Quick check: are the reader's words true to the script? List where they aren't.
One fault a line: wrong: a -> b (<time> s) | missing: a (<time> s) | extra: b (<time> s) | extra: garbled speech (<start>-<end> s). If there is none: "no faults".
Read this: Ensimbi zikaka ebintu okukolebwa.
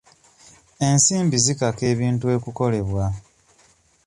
no faults